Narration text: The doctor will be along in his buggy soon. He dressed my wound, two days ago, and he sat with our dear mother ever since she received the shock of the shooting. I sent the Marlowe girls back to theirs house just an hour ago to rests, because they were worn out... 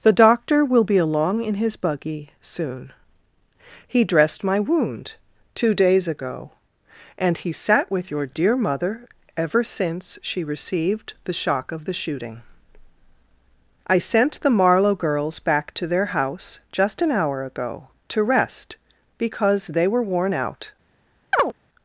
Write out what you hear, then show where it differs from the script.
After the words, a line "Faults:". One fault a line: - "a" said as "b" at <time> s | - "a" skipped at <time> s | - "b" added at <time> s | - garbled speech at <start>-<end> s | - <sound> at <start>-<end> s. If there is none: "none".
The doctor will be along in his buggy soon. He dressed my wound, two days ago, and he sat with your dear mother ever since she received the shock of the shooting. I sent the Marlowe girls back to their house just an hour ago to rest, because they were worn out...
Faults:
- "our" said as "your" at 8.1 s
- "theirs" said as "their" at 15.9 s
- "rests" said as "rest" at 18.2 s
- chirp at 21.3-21.5 s